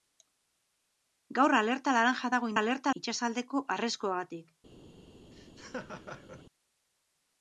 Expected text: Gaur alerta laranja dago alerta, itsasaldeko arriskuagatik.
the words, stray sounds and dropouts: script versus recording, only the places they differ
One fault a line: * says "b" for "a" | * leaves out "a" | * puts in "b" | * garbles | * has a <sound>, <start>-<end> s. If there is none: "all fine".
* has a laugh, 5.3-6.4 s